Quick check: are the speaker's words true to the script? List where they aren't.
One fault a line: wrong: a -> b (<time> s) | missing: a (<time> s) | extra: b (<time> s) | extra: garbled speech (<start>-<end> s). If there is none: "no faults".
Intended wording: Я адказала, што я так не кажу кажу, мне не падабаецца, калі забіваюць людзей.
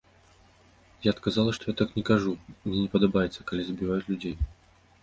missing: кажу (2.4 s)